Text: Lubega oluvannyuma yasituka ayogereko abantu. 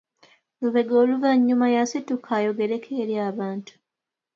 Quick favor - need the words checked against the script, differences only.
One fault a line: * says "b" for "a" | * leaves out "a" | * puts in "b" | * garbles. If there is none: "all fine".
* puts in "eri"